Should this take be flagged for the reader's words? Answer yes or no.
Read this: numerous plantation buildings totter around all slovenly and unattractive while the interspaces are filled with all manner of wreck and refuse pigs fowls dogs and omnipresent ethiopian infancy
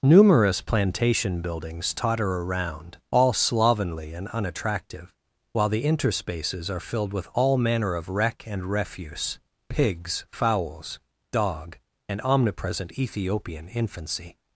yes